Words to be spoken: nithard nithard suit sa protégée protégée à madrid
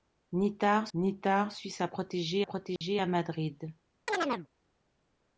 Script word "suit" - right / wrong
right